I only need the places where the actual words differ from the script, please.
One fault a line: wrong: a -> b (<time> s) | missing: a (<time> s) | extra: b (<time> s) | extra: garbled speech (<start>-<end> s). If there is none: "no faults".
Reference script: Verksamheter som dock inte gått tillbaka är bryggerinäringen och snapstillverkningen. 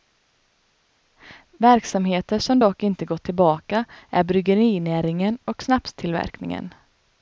no faults